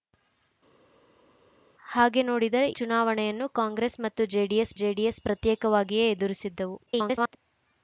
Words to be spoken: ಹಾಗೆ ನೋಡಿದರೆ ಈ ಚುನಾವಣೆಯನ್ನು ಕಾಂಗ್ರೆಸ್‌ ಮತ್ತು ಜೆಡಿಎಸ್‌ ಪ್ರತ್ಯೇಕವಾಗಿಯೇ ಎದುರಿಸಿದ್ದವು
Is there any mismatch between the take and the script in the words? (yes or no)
yes